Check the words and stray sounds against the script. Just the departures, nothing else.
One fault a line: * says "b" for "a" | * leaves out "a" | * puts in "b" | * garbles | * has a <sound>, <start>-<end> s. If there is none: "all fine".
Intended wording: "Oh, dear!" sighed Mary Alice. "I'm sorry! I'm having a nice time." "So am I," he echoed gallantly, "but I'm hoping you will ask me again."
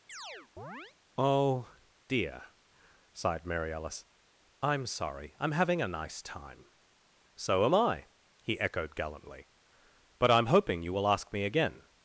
* has a chirp, 0.1-1.0 s